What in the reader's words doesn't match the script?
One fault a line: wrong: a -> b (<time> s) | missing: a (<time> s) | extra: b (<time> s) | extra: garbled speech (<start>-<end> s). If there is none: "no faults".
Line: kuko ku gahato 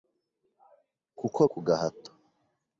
no faults